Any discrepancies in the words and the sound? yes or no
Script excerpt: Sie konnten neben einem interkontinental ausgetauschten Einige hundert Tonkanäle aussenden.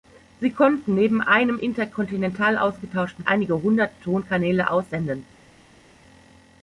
no